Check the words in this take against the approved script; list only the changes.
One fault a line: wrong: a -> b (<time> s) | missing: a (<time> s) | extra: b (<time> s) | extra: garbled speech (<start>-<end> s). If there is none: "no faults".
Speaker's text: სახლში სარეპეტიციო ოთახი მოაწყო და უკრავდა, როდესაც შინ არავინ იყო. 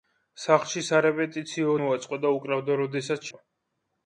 missing: ოთახი (1.8 s)
missing: შინ არავინ (3.3 s)